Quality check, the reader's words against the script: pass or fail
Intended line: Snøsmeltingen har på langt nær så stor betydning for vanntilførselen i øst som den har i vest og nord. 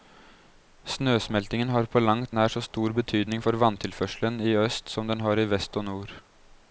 pass